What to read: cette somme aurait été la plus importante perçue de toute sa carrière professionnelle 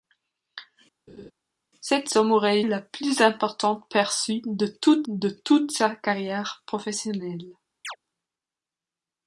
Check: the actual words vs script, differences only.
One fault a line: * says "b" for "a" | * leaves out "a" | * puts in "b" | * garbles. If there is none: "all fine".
* leaves out "été"
* puts in "de toute"